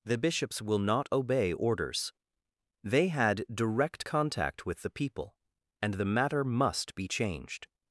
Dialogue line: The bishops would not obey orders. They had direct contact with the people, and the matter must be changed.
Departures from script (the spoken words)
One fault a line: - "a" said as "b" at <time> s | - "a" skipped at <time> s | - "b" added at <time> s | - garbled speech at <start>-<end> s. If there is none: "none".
- "would" said as "will" at 0.6 s